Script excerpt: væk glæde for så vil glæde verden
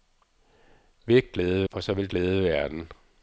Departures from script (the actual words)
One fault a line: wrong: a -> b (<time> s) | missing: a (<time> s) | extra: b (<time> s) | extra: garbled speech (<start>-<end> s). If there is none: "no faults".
no faults